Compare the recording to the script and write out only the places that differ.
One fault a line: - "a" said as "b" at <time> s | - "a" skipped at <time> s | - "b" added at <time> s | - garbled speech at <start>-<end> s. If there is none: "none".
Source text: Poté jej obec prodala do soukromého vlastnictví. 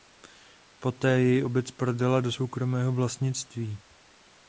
none